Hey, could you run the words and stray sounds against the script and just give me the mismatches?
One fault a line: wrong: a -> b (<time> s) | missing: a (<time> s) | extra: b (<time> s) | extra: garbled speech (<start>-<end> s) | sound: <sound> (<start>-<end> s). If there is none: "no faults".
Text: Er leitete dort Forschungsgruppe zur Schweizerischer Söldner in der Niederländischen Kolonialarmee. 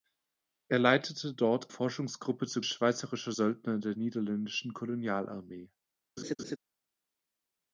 sound: laugh (6.2-6.6 s)